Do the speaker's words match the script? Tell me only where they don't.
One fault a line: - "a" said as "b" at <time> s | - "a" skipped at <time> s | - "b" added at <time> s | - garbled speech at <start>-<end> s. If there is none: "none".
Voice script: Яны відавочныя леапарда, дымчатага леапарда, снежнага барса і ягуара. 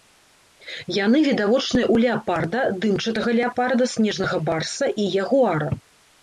- "ў" added at 1.9 s